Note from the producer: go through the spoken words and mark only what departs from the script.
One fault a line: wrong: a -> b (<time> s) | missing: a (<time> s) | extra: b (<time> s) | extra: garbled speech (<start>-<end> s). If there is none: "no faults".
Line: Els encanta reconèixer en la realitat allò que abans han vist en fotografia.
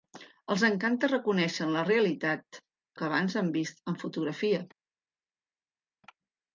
missing: allò (2.6 s)